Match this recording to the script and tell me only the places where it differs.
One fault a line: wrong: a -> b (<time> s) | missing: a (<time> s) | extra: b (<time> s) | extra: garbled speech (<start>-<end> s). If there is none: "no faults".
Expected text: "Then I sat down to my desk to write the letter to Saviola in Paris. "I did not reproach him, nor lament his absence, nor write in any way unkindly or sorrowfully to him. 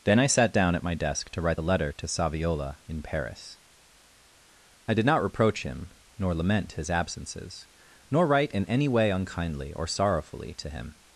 wrong: to -> at (0.7 s)
wrong: absence -> absences (6.9 s)